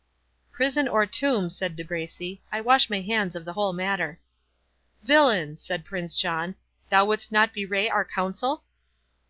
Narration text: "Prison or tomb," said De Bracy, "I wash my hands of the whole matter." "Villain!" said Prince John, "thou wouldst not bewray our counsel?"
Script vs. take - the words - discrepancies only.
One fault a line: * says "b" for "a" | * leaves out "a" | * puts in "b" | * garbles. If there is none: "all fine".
all fine